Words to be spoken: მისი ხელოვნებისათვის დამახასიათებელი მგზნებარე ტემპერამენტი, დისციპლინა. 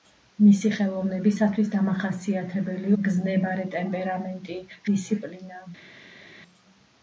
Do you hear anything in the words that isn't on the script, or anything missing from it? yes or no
no